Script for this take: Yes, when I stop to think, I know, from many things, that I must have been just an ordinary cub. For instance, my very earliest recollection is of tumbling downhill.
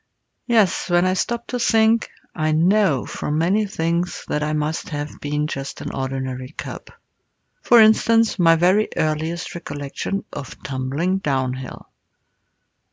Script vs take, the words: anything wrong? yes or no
yes